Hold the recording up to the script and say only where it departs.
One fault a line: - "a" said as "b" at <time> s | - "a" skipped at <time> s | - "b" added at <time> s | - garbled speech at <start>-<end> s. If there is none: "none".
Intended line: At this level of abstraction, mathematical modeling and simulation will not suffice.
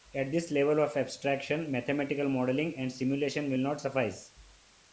none